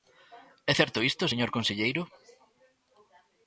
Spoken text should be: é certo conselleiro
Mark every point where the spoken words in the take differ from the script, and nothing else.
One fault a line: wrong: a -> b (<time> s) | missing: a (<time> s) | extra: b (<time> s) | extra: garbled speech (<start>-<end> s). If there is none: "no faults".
extra: isto señor (1.1 s)